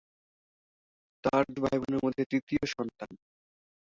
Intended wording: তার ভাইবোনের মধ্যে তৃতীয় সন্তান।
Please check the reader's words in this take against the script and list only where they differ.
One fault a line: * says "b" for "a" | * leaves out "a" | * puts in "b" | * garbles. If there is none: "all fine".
all fine